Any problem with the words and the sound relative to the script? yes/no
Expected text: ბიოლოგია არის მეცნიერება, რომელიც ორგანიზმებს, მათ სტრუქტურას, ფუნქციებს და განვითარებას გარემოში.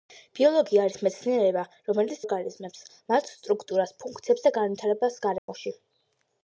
yes